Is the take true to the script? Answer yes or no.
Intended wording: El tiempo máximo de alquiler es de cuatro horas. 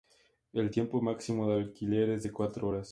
yes